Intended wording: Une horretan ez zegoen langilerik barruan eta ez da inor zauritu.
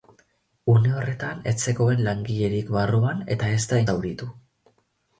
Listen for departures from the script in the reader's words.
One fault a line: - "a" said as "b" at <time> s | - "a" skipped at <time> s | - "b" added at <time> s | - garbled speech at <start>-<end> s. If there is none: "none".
- "inor" skipped at 3.8 s